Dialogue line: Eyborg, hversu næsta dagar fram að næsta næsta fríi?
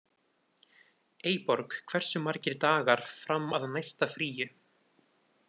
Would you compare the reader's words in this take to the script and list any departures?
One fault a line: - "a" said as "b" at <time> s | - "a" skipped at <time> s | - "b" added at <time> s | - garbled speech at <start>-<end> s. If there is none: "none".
- "næsta" said as "margir" at 2.3 s
- "næsta" skipped at 4.1 s